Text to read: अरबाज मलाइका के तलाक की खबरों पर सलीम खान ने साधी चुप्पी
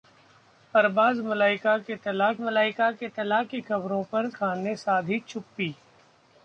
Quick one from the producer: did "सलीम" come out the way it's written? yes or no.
no